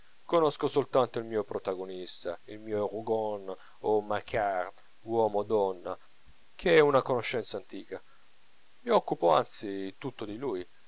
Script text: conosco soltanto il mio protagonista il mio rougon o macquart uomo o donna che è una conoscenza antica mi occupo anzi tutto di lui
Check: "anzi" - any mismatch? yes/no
no